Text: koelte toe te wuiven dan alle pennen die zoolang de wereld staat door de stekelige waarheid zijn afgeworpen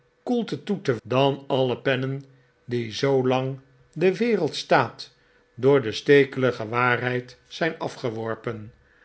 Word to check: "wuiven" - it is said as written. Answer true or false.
false